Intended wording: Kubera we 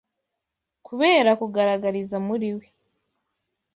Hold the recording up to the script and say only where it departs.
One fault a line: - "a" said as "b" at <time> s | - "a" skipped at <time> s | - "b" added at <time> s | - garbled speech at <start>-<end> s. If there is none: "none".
- "kugaragariza muri" added at 1.4 s